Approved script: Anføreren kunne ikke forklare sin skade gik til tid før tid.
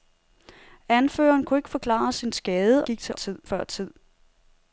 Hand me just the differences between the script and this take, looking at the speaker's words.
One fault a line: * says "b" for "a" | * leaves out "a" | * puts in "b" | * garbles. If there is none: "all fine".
all fine